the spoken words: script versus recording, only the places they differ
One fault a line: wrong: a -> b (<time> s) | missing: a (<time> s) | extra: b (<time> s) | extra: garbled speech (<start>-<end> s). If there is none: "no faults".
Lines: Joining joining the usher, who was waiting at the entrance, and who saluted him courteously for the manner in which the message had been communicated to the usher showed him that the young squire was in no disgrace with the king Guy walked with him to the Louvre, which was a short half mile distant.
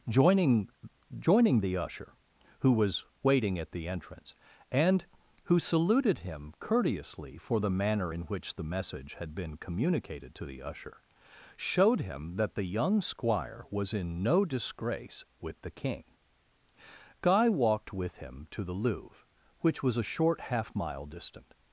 no faults